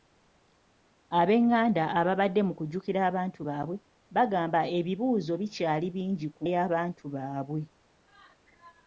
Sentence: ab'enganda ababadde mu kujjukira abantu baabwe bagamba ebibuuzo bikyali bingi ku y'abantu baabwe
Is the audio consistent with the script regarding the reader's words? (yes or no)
yes